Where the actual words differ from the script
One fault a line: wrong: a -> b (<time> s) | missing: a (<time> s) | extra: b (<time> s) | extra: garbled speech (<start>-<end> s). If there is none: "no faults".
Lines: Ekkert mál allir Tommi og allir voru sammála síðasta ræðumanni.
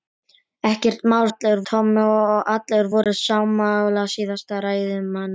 no faults